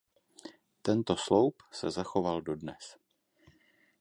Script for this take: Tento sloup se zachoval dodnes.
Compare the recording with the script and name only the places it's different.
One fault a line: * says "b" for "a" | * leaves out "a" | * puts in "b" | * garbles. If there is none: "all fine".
all fine